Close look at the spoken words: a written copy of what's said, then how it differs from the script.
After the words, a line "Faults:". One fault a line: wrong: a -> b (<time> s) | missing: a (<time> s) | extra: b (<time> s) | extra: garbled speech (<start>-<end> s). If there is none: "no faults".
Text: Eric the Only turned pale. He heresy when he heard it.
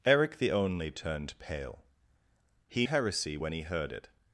Eric the Only turned pale. He heresy when he heard it.
Faults:
no faults